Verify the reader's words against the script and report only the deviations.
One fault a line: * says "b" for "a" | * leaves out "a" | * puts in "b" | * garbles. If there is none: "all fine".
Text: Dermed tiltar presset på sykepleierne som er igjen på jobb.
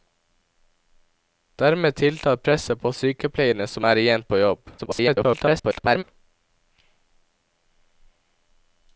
* garbles